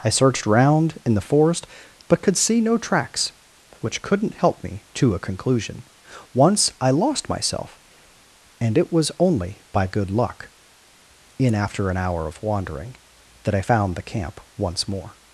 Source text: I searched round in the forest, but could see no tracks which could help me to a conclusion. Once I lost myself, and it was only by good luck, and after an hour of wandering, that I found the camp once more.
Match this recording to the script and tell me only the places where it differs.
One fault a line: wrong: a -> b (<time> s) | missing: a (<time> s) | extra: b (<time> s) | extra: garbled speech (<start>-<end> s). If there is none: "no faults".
wrong: could -> couldn't (4.0 s)
wrong: and -> in (11.4 s)